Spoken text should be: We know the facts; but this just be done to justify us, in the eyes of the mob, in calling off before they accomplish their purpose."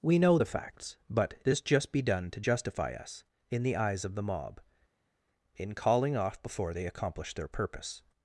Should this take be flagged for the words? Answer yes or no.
no